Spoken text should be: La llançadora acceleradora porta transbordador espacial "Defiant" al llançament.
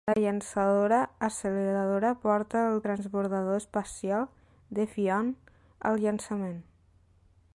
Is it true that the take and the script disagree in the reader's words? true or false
true